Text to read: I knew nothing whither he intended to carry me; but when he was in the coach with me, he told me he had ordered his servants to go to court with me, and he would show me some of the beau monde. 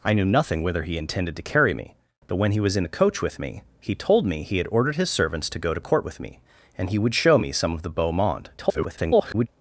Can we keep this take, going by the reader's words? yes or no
no